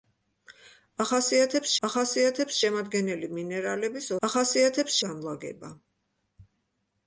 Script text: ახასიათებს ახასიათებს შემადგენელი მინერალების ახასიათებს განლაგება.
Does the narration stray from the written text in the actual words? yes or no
no